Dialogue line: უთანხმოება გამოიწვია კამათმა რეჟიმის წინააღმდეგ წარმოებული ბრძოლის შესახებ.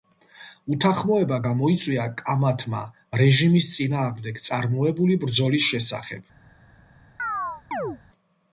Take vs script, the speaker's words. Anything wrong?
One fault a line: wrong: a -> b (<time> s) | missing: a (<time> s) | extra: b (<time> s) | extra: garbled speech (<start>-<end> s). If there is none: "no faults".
no faults